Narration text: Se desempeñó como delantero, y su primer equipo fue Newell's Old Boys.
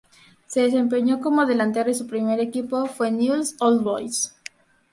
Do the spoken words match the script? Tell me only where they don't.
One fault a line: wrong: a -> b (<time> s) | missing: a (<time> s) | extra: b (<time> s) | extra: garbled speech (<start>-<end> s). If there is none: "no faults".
no faults